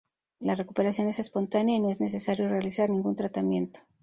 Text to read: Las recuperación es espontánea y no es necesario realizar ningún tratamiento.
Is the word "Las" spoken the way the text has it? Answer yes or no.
no